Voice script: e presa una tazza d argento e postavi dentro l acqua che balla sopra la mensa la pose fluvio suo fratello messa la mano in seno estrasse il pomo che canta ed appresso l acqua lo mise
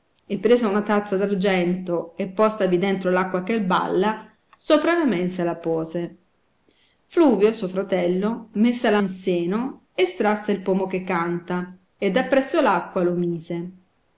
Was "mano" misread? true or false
true